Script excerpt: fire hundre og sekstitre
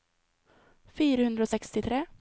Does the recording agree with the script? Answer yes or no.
yes